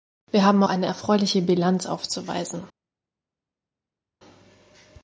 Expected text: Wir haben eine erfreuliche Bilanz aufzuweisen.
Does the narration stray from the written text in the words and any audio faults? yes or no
no